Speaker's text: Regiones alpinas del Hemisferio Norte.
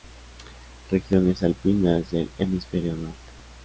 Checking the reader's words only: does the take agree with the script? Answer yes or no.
yes